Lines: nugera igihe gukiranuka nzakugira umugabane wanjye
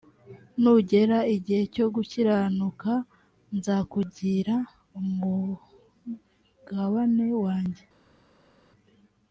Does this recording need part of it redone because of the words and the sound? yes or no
yes